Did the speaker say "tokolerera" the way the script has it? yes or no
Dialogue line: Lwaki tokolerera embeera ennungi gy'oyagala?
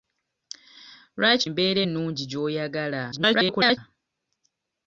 no